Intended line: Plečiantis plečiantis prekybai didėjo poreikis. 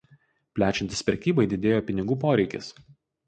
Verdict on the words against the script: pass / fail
fail